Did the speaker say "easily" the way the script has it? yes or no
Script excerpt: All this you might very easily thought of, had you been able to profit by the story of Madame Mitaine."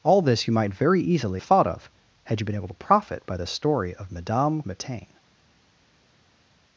yes